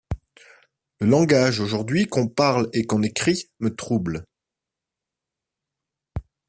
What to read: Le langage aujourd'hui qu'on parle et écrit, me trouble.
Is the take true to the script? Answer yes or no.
no